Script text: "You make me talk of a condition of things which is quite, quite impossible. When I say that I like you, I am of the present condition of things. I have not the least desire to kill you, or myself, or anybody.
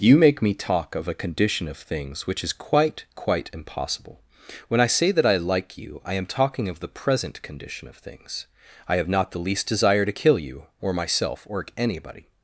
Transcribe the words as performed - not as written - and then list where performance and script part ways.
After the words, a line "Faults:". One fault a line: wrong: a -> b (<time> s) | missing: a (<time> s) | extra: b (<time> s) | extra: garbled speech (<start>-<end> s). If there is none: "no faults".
"You make me talk of a condition of things which is quite, quite impossible. When I say that I like you, I am talking of the present condition of things. I have not the least desire to kill you, or myself, or anybody.
Faults:
extra: talking (6.2 s)